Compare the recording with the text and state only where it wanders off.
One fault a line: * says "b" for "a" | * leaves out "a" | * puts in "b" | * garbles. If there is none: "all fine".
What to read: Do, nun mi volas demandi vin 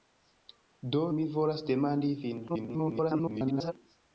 * leaves out "nun"
* garbles